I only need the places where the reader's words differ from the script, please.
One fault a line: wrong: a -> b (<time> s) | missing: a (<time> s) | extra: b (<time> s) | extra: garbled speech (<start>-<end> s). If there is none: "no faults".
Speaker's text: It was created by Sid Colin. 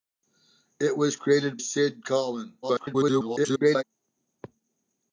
missing: by (1.6 s)
extra: garbled speech (2.6-3.8 s)